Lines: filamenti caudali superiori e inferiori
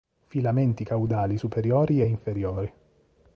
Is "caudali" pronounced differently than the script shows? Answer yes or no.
no